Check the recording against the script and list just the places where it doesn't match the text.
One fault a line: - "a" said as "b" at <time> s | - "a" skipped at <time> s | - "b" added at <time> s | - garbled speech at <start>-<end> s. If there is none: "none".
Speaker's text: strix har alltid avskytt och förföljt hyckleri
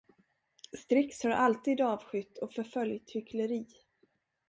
none